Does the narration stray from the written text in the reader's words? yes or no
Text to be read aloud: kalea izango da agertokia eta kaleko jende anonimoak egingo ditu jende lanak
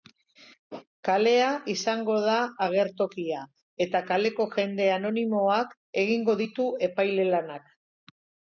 yes